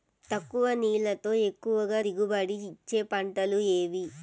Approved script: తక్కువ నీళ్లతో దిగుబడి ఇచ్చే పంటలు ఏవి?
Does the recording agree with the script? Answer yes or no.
no